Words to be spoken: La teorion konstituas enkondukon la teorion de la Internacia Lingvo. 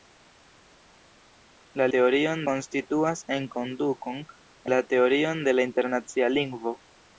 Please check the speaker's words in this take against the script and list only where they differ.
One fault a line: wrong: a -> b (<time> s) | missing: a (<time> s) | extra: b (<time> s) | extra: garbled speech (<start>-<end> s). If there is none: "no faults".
no faults